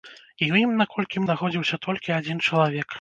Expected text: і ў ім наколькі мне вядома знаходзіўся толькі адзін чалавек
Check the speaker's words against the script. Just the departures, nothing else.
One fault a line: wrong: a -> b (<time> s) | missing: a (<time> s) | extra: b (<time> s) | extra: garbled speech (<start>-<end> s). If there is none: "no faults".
missing: мне вядома (1.2 s)